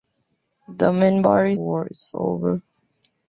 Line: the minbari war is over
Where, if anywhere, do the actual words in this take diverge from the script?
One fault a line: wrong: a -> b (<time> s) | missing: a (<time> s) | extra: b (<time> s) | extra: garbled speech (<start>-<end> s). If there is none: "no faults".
no faults